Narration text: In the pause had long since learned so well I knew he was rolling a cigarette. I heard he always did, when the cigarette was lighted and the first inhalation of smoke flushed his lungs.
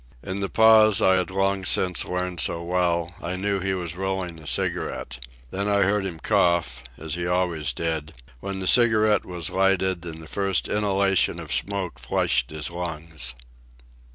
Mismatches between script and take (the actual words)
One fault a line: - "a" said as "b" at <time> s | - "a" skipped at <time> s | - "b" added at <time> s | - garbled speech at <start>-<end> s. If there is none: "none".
- "I" added at 1.0 s
- "Then" added at 5.5 s
- "him cough as" added at 6.1 s